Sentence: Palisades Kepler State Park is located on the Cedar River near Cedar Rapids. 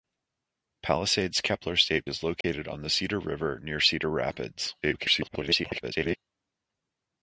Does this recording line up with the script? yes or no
no